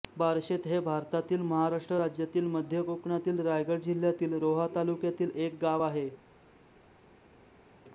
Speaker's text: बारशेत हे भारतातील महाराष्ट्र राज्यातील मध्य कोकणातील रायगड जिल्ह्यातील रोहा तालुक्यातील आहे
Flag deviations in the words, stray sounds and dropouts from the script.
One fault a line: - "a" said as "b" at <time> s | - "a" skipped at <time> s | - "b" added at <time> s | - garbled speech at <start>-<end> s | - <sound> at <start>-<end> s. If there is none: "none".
- "एक गाव" added at 5.4 s